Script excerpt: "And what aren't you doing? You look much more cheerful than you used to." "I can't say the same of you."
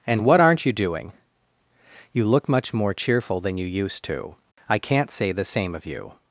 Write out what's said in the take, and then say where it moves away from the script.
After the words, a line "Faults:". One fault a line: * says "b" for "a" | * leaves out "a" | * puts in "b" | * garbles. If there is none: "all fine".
"And what aren't you doing? You look much more cheerful than you used to." "I can't say the same of you."
Faults:
all fine